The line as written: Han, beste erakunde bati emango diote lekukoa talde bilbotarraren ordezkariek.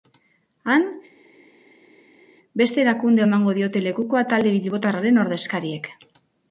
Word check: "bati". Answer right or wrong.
wrong